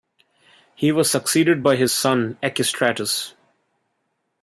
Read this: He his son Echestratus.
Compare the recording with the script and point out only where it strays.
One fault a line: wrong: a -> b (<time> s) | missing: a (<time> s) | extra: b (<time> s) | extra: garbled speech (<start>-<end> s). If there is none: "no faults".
extra: was succeeded by (0.9 s)